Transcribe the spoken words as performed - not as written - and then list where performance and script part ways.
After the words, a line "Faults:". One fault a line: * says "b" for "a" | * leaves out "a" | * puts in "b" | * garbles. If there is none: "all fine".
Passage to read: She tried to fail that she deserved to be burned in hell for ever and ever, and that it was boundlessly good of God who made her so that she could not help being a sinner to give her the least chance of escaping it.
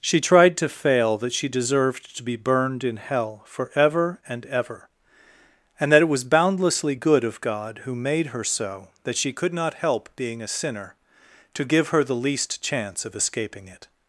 She tried to fail that she deserved to be burned in hell for ever and ever, and that it was boundlessly good of God who made her so that she could not help being a sinner to give her the least chance of escaping it.
Faults:
all fine